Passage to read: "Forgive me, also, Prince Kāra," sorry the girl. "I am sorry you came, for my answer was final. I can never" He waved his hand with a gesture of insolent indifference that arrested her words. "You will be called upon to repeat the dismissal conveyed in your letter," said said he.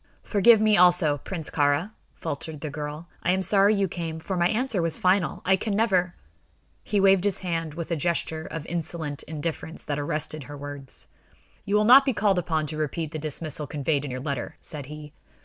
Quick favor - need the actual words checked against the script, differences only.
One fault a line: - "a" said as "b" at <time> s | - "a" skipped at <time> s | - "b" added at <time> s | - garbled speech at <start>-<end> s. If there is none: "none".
- "sorry" said as "faltered" at 2.1 s
- "not" added at 11.8 s
- "said" skipped at 14.9 s